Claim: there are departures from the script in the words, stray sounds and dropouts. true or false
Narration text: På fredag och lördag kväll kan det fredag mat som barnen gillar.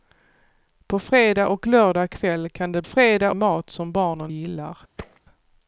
true